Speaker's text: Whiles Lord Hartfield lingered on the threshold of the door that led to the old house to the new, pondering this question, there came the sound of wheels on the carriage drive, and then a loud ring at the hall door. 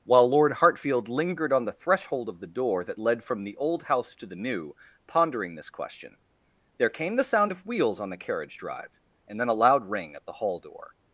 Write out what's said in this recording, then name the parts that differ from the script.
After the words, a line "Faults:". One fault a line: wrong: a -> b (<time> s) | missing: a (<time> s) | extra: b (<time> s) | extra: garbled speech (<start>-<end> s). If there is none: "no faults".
While Lord Hartfield lingered on the threshold of the door that led from the old house to the new, pondering this question, there came the sound of wheels on the carriage drive, and then a loud ring at the hall door.
Faults:
wrong: Whiles -> While (0.0 s)
wrong: to -> from (3.2 s)